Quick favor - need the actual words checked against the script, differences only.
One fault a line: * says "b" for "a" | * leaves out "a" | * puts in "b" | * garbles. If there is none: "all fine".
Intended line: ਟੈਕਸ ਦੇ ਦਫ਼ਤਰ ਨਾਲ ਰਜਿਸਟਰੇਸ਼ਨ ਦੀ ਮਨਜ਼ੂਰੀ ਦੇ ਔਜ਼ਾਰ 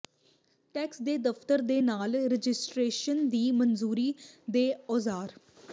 * puts in "ਦੇ"